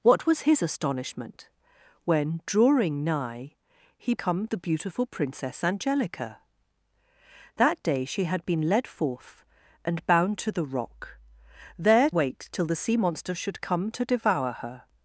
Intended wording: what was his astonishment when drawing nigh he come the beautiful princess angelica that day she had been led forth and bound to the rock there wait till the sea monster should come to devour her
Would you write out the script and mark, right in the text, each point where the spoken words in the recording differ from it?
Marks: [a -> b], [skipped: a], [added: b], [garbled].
what was his astonishment when drawing nigh he come the beautiful princess angelica that day she had been led forth and bound to the rock there wait till the sea monster should come to devour her